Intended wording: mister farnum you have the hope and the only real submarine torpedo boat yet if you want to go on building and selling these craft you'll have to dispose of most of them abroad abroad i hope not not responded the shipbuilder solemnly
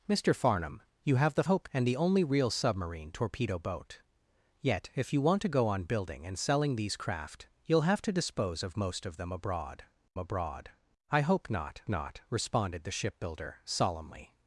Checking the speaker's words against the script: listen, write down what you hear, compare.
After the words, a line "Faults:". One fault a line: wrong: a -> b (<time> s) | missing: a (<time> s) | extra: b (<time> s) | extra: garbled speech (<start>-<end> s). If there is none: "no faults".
mister farnum you have the hope and the only real submarine torpedo boat yet if you want to go on building and selling these craft you'll have to dispose of most of them abroad abroad i hope not not responded the shipbuilder solemnly
Faults:
no faults